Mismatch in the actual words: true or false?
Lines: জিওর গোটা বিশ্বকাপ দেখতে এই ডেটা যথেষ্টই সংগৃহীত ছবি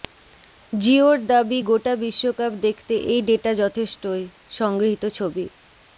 true